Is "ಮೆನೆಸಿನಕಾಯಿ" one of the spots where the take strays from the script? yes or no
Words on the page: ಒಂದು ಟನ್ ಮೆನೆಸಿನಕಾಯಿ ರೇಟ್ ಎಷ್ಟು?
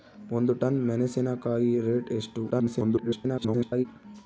no